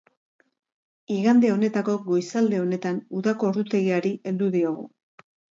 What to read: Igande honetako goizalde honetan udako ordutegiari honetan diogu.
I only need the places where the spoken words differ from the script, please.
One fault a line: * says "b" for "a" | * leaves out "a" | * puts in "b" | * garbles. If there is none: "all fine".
* says "heldu" for "honetan"